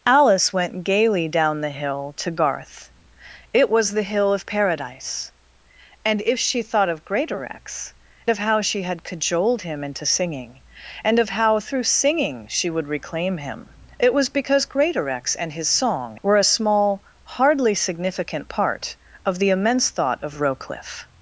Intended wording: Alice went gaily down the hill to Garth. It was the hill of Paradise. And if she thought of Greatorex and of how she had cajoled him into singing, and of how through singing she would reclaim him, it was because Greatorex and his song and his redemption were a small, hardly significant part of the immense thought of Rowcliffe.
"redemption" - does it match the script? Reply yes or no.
no